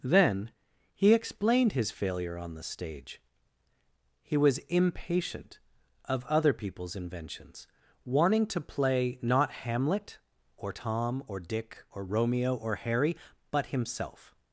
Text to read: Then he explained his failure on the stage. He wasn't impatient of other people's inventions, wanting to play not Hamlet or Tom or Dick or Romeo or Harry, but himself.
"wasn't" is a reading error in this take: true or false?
true